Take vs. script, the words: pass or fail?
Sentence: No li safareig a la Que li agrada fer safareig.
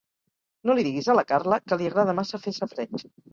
fail